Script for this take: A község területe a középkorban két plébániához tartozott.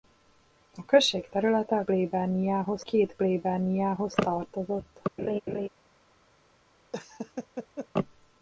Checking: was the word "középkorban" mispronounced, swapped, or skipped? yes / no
yes